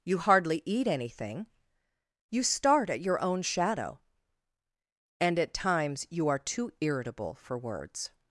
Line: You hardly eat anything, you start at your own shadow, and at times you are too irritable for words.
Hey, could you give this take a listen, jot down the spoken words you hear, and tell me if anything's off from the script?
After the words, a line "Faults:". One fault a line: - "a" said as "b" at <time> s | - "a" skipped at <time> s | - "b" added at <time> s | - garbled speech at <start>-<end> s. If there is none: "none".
You hardly eat anything, you start at your own shadow, and at times you are too irritable for words.
Faults:
none